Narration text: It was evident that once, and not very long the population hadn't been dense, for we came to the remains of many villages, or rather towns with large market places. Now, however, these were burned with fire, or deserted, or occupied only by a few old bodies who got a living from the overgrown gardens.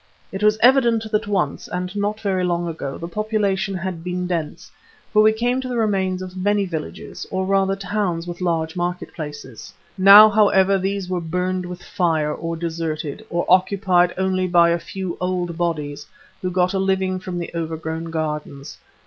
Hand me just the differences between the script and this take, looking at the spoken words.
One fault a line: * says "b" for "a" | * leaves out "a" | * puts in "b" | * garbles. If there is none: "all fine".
* puts in "ago"
* says "had" for "hadn't"